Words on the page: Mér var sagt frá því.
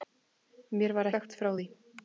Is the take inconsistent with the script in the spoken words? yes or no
no